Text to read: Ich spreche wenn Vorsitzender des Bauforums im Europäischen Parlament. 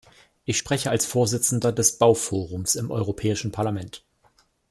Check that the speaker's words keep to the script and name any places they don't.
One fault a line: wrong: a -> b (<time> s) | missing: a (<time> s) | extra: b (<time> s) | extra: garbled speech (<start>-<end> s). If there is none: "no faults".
wrong: wenn -> als (0.9 s)